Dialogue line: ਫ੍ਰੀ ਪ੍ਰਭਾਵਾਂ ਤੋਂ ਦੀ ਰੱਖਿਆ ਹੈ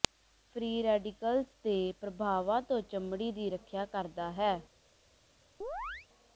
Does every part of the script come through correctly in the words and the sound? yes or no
no